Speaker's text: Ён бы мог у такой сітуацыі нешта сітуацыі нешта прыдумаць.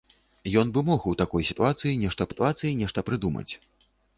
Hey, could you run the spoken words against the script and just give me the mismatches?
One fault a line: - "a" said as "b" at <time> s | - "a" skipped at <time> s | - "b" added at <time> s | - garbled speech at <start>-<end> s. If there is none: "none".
none